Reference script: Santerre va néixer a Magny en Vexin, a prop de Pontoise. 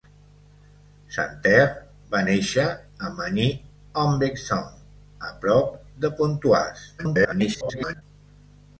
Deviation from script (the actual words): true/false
true